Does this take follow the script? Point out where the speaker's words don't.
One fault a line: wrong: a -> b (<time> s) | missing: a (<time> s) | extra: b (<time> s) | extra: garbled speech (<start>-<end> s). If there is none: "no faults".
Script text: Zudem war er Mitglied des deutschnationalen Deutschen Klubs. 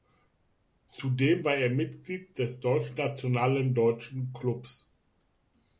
no faults